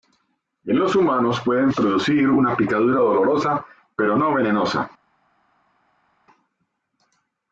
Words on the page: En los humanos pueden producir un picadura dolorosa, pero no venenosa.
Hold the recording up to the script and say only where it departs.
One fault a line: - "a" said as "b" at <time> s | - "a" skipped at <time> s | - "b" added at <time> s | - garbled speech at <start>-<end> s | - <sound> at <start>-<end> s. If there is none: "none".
- "un" said as "una" at 2.3 s